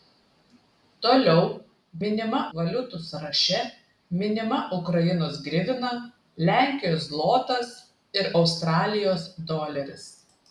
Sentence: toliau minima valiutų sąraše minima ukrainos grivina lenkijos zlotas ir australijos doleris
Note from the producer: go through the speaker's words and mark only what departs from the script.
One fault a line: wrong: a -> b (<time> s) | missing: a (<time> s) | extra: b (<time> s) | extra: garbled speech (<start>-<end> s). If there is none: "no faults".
no faults